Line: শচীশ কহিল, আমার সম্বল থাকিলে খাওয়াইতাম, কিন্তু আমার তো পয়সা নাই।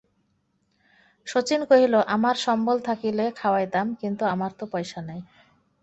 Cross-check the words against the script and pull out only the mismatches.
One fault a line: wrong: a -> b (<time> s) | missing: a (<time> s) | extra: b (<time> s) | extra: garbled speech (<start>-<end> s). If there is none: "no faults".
no faults